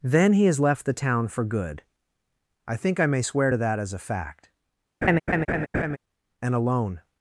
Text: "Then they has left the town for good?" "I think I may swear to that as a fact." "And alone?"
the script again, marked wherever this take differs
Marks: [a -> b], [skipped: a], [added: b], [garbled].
"Then [they -> he] has left the town for good?" "I think I may swear to that as a fact." "And alone?"